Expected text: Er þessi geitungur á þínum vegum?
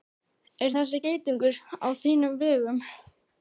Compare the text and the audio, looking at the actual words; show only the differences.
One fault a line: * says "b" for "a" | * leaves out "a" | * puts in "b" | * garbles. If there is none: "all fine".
all fine